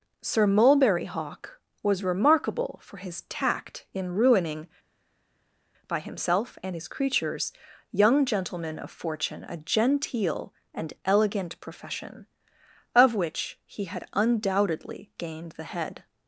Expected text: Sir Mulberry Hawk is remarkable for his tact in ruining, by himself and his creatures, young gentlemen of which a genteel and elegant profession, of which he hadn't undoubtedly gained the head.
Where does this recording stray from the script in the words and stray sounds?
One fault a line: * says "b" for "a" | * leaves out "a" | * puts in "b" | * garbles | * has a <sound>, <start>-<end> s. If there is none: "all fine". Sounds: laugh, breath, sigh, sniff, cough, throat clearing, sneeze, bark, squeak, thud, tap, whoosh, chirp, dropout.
* says "was" for "is"
* says "fortune" for "which"
* says "had" for "hadn't"